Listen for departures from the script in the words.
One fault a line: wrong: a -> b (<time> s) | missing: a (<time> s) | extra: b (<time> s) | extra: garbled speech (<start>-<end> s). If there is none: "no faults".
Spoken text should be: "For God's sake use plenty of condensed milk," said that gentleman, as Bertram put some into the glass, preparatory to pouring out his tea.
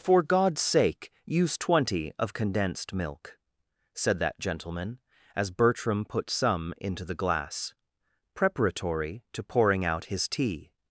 wrong: plenty -> twenty (1.6 s)